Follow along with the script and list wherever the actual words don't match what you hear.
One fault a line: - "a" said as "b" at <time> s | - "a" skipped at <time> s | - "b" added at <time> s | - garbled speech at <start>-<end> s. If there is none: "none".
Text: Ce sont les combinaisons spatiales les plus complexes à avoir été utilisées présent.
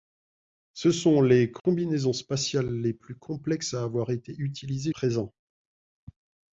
none